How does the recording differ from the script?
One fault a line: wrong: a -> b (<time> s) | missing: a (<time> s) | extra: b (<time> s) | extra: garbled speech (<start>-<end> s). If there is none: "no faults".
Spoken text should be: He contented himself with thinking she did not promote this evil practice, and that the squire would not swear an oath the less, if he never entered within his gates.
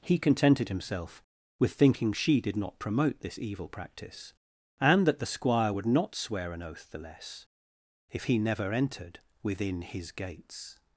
no faults